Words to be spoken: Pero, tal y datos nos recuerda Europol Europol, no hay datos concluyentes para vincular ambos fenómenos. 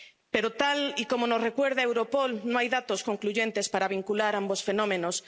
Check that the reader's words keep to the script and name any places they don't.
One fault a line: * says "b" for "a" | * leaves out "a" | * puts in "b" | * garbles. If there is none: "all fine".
* says "como" for "datos"
* leaves out "Europol"